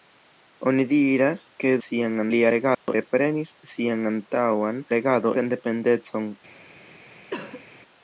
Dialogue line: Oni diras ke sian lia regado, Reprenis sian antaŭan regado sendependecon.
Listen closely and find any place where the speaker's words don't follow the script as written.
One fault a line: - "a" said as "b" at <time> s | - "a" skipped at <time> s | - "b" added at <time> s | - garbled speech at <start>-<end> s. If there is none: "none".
none